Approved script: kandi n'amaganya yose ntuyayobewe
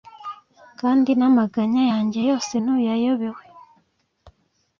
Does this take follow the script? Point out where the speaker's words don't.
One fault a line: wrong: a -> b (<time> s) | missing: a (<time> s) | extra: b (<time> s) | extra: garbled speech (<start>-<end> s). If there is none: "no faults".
extra: yanjye (1.9 s)